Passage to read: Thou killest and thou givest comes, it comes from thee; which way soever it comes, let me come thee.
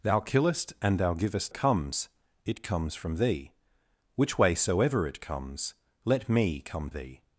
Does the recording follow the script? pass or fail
pass